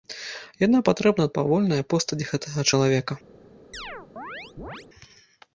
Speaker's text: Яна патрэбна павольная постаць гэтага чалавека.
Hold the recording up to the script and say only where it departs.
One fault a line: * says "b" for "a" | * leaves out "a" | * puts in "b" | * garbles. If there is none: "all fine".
all fine